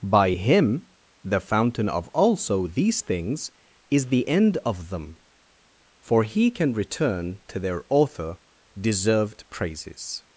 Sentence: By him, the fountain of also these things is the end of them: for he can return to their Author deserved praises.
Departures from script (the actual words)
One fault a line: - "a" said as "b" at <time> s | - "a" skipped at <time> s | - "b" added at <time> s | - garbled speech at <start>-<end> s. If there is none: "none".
none